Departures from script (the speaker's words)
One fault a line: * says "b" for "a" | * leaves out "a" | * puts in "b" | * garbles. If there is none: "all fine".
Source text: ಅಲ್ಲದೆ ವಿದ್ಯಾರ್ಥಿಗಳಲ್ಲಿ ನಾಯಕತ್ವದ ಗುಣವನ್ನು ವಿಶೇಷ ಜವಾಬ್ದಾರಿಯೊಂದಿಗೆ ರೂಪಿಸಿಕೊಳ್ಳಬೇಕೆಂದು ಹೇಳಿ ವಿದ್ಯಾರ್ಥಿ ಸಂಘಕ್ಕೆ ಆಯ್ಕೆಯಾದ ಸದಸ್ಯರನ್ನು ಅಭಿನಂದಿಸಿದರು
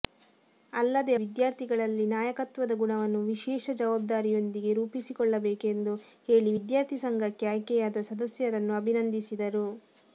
all fine